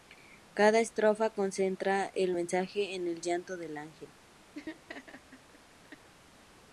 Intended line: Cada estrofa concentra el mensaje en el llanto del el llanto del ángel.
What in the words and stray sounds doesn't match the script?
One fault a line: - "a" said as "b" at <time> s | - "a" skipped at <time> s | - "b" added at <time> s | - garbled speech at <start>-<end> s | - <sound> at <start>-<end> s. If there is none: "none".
- "el llanto del" skipped at 3.8 s
- laugh at 4.5-6.1 s